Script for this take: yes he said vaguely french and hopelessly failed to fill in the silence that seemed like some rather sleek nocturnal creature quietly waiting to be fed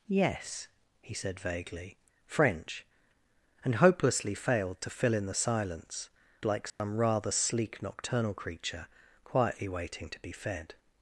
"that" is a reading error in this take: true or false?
true